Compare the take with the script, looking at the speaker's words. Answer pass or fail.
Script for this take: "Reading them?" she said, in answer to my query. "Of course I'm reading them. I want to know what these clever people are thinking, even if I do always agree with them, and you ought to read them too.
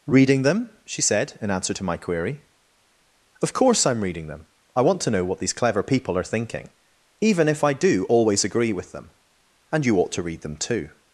pass